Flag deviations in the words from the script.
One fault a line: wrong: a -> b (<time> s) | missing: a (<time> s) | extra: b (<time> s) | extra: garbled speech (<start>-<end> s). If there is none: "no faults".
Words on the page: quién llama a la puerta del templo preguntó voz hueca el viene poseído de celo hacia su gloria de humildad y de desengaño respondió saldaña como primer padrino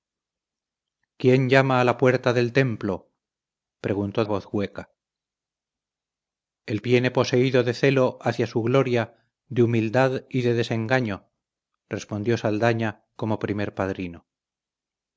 no faults